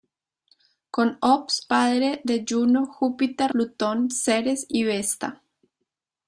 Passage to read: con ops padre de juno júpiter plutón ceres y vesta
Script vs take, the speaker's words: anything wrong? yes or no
no